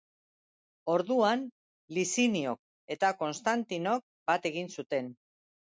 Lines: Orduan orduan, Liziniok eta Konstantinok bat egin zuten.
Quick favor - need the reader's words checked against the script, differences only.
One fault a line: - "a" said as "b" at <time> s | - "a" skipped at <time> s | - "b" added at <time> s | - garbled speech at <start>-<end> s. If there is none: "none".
- "orduan" skipped at 1.4 s